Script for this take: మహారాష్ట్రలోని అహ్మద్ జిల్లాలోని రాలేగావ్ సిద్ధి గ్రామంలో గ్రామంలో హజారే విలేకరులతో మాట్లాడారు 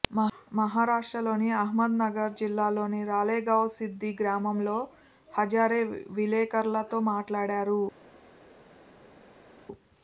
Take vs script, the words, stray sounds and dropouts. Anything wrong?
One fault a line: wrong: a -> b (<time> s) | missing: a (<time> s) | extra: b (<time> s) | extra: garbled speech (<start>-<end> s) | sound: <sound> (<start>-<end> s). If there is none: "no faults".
extra: నగర్ (2.0 s)
missing: గ్రామంలో (4.8 s)